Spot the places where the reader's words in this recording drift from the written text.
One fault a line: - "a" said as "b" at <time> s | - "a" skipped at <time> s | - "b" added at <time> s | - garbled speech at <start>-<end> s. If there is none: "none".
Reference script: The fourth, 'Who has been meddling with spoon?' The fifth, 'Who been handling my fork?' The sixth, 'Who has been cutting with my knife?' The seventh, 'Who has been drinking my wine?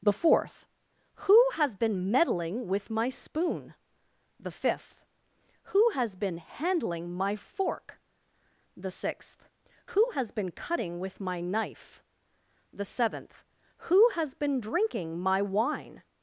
- "my" added at 2.9 s
- "has" added at 5.9 s